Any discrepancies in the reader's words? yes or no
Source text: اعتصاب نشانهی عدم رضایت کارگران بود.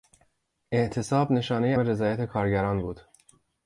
yes